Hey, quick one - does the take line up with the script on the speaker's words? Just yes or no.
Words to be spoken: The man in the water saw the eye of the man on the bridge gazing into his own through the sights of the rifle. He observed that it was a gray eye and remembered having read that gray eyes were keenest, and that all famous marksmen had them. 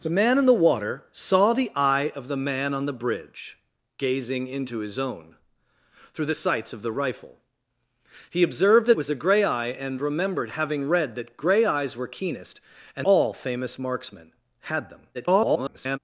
no